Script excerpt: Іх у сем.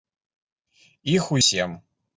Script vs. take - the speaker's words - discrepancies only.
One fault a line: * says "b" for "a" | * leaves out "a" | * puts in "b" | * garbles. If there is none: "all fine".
all fine